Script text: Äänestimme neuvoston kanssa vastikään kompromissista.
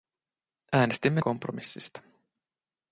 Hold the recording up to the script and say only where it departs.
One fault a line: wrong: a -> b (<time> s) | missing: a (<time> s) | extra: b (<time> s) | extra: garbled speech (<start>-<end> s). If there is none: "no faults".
missing: neuvoston kanssa vastikään (1.2 s)